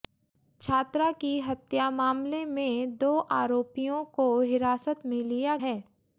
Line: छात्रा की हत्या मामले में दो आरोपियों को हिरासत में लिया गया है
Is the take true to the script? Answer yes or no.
no